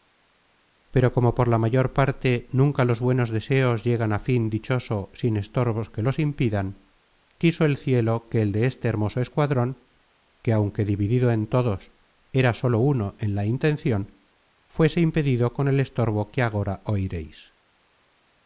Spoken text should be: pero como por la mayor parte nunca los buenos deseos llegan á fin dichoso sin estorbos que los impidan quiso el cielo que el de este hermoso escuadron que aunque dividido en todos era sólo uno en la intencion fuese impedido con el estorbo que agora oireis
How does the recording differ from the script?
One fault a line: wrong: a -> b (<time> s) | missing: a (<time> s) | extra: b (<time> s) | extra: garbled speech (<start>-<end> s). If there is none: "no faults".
no faults